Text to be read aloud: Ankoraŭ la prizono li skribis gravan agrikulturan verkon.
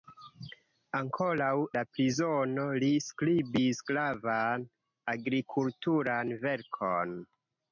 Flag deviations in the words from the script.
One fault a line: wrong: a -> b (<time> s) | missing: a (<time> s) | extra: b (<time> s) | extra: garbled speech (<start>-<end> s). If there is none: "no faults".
no faults